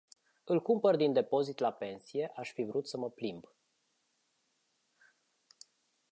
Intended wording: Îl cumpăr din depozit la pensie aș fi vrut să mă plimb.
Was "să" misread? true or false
false